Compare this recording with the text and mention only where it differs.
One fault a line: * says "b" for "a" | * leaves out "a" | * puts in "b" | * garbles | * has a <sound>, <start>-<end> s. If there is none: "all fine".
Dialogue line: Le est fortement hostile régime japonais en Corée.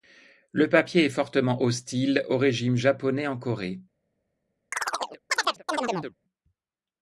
* puts in "papier"
* puts in "au"
* has a chirp, 4.7-6.2 s